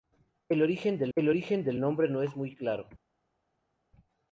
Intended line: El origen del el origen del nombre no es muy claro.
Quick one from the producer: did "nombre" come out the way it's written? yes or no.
yes